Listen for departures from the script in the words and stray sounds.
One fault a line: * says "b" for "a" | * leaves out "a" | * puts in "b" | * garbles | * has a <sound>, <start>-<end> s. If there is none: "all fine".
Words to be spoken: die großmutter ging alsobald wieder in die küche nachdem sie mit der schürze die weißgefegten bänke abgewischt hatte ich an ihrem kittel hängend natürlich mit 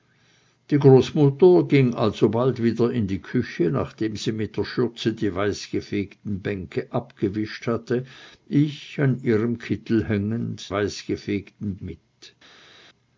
* says "weißgefegten" for "natürlich"